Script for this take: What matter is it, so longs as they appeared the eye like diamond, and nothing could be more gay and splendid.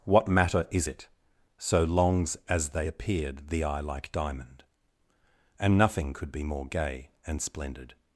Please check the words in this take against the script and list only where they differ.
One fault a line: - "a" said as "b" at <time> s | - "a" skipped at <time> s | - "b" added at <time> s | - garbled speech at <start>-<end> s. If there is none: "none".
none